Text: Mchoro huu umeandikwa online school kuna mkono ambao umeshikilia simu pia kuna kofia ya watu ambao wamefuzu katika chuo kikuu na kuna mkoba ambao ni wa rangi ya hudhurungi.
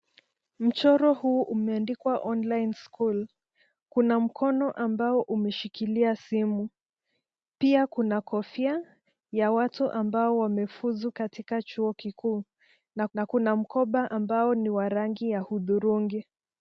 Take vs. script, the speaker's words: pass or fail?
fail